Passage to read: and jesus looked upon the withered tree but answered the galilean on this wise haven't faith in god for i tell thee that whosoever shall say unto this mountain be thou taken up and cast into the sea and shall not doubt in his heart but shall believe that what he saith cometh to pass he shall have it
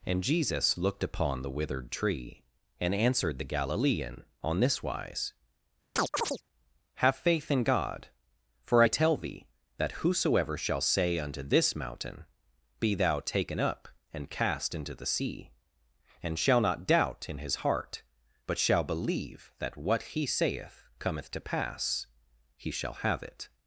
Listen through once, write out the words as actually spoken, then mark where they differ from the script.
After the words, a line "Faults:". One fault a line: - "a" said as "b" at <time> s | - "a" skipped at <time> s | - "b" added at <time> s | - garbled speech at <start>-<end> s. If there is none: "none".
and jesus looked upon the withered tree and answered the galilean on this wise have faith in god for i tell thee that whosoever shall say unto this mountain be thou taken up and cast into the sea and shall not doubt in his heart but shall believe that what he saith cometh to pass he shall have it
Faults:
- "but" said as "and" at 2.8 s
- "haven't" said as "have" at 7.0 s